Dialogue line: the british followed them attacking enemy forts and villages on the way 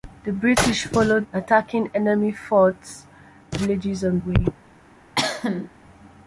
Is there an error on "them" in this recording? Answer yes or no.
yes